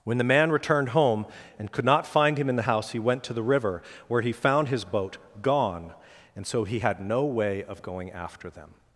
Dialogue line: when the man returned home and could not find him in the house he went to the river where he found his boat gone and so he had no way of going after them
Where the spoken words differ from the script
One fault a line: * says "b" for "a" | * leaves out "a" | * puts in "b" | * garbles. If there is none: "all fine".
all fine